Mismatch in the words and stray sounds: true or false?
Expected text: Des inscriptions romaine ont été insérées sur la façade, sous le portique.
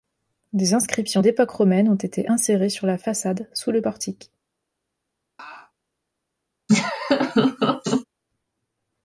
true